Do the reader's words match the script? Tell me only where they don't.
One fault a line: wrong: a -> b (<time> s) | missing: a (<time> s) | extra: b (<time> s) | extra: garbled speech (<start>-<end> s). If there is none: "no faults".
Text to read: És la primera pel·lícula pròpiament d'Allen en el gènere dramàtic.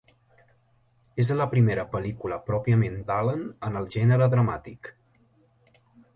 no faults